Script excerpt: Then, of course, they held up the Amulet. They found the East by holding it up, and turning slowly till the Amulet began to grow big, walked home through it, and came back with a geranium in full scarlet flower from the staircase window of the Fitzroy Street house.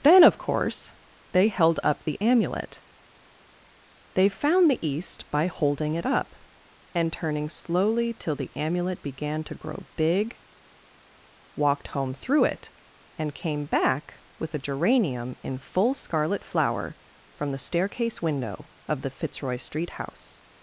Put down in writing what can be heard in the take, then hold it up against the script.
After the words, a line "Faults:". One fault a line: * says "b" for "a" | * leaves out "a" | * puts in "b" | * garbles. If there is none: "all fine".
Then, of course, they held up the Amulet. They found the East by holding it up, and turning slowly till the Amulet began to grow big, walked home through it, and came back with a geranium in full scarlet flower from the staircase window of the Fitzroy Street house.
Faults:
all fine